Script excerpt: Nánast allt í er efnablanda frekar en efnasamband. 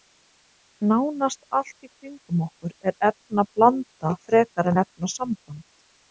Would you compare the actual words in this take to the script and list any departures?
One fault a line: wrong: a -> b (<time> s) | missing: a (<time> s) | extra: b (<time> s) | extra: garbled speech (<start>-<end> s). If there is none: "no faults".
extra: kringum okkur (1.9 s)